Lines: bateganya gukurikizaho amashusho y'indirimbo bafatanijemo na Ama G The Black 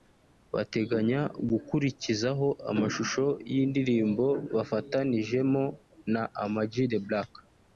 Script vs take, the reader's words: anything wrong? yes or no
no